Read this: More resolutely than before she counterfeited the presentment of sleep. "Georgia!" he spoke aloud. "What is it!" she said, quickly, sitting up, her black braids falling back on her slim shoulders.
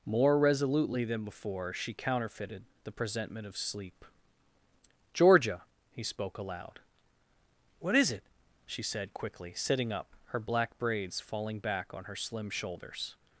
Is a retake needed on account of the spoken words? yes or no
no